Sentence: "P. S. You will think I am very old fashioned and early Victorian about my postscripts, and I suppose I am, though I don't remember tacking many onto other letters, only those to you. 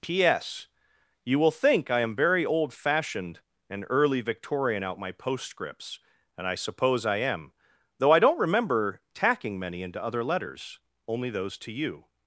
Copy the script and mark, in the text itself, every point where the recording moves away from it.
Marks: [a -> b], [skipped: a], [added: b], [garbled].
"P. S. You will think I am very old fashioned and early Victorian [about -> out] my postscripts, and I suppose I am, though I don't remember tacking many [onto -> into] other letters, only those to you.